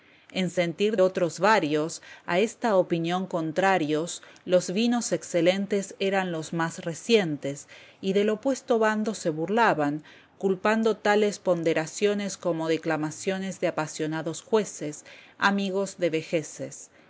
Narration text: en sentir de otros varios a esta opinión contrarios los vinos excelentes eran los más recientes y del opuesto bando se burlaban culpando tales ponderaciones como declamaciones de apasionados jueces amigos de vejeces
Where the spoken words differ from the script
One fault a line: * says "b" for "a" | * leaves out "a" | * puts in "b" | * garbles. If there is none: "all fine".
* leaves out "de"